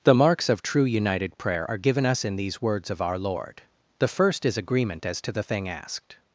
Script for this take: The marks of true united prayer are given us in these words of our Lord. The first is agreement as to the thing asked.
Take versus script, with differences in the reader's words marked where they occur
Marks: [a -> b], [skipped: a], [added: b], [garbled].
The marks of true united prayer are given us in these words of our Lord. The first is agreement as to the thing asked.